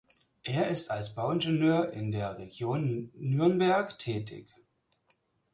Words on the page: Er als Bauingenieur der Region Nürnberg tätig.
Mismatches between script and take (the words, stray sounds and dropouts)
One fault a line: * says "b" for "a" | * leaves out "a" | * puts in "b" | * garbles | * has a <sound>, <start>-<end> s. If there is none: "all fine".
* puts in "ist"
* puts in "in"